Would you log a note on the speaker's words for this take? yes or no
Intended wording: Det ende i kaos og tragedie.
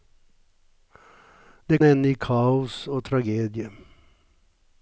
no